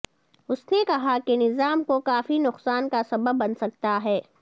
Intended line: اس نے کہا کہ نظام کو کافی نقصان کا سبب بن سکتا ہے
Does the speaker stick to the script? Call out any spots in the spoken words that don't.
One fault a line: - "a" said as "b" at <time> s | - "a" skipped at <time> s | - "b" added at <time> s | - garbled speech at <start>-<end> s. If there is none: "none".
none